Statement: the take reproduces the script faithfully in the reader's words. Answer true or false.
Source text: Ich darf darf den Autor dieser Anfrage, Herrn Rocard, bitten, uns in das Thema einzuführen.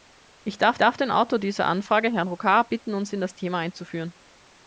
true